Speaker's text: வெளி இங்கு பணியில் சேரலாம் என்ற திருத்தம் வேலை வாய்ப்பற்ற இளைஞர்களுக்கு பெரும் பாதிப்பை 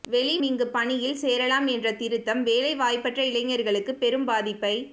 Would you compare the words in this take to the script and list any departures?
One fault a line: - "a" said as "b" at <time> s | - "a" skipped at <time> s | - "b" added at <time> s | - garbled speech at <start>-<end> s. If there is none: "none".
none